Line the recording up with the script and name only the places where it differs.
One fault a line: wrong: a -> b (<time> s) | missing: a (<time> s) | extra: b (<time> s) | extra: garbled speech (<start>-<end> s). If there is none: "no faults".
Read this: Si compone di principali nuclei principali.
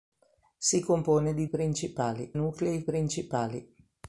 no faults